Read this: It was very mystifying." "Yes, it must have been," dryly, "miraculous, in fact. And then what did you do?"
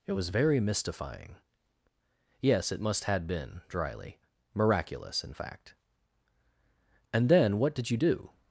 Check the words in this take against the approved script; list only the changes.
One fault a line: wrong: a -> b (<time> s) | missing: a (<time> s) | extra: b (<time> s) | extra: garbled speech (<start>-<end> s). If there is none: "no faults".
wrong: have -> had (3.0 s)